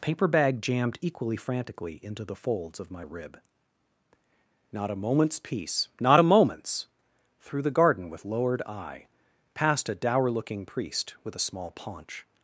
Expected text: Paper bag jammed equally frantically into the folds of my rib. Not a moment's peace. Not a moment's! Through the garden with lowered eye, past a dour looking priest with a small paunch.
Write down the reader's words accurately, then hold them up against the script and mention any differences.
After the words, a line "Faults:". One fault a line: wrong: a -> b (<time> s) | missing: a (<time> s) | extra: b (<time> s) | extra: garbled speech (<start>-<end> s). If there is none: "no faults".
Paper bag jammed equally frantically into the folds of my rib. Not a moment's peace. Not a moment's! Through the garden with lowered eye, past a dour looking priest with a small paunch.
Faults:
no faults